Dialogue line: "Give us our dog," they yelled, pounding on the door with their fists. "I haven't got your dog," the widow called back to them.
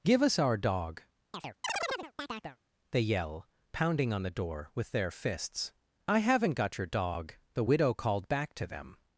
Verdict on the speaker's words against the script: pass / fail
fail